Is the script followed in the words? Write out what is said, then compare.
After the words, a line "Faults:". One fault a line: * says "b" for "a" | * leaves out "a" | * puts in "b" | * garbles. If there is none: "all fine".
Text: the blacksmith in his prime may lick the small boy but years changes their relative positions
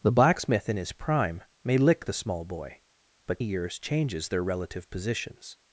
the blacksmith in his prime may lick the small boy but years changes their relative positions
Faults:
all fine